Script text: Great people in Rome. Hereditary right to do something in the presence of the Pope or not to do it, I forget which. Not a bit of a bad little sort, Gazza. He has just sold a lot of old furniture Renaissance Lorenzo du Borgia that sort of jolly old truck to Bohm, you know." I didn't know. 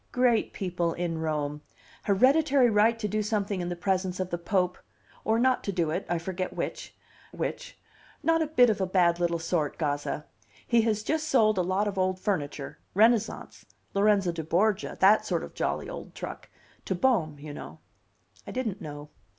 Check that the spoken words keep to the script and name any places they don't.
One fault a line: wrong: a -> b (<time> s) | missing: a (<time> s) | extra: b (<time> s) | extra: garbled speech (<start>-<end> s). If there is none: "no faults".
extra: which (7.3 s)